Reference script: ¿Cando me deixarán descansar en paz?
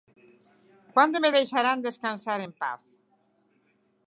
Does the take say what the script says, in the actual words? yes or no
yes